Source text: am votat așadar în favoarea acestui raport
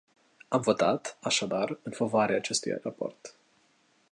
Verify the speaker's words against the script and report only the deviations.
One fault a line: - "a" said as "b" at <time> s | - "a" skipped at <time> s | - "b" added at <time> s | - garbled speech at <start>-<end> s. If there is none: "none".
none